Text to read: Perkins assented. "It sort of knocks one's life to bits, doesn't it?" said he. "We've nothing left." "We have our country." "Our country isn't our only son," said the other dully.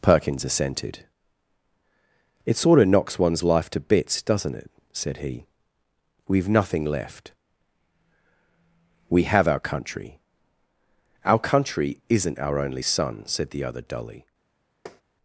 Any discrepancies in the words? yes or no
no